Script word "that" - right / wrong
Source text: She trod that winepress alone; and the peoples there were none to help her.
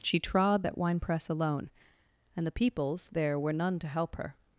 right